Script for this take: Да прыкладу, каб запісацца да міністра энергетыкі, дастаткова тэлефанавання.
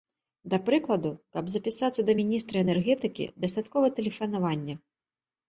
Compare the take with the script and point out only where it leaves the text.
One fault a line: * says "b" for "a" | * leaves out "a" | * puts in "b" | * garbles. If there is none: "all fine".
all fine